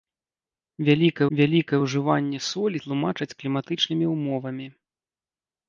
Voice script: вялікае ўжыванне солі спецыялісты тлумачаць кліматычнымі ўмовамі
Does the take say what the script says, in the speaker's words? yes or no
no